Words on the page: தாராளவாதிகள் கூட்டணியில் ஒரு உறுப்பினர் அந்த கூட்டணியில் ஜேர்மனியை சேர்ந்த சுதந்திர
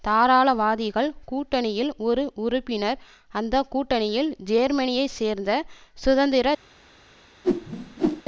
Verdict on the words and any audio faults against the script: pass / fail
fail